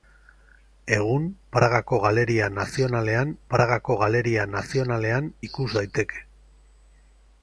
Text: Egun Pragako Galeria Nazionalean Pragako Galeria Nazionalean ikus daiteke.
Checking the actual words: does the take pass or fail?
pass